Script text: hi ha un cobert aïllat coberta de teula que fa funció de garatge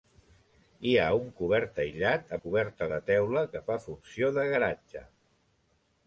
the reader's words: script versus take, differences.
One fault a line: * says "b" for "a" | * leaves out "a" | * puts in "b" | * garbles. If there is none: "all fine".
all fine